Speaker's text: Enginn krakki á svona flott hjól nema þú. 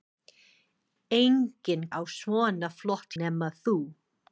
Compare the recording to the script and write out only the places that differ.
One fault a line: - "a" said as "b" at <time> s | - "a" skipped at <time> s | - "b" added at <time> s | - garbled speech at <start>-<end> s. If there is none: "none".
- "krakki" skipped at 1.8 s
- "hjól" skipped at 3.1 s